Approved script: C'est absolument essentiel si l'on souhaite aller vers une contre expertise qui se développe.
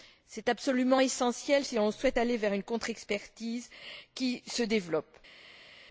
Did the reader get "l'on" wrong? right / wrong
right